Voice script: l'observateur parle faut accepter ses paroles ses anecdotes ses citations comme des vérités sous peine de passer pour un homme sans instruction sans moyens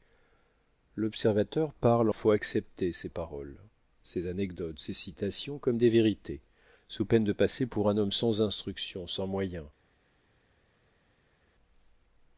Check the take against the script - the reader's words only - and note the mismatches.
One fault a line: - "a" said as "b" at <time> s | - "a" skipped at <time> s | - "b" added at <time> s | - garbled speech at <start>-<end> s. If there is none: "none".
none